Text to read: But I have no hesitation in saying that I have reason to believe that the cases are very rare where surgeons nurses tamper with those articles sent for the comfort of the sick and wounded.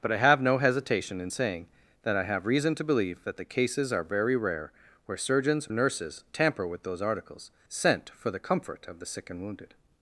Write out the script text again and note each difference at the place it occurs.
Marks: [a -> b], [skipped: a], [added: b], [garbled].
But I have no hesitation in saying that I have reason to believe that the cases are very rare where surgeons nurses tamper with those articles sent for the comfort of the sick and wounded.